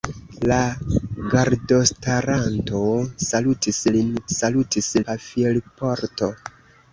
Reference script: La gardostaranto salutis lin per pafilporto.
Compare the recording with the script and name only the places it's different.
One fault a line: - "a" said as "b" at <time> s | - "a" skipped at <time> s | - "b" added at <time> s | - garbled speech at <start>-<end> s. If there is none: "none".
- "per" said as "salutis" at 4.4 s